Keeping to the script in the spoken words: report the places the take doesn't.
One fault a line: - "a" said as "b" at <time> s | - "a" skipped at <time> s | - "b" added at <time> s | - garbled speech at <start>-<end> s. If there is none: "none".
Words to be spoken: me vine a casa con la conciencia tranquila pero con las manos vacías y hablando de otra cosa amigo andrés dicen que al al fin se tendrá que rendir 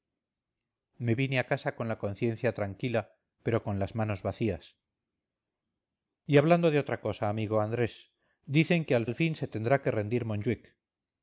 none